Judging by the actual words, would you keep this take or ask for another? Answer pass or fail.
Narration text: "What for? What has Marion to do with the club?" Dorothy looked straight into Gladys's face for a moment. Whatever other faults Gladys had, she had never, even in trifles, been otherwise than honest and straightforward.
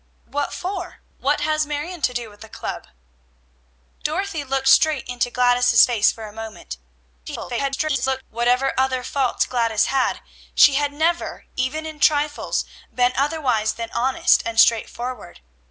fail